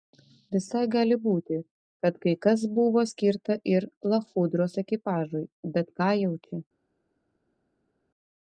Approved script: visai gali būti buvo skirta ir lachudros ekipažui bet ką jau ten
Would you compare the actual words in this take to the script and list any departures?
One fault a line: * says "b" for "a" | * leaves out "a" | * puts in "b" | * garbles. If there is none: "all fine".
* puts in "kad kai kas"
* says "čia" for "ten"